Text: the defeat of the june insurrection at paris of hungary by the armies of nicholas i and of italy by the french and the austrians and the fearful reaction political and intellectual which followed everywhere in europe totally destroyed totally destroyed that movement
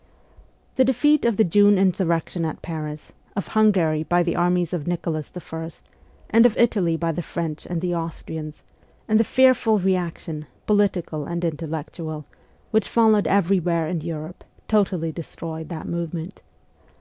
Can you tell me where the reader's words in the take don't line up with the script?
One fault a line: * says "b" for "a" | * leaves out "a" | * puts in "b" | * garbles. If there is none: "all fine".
* leaves out "totally destroyed"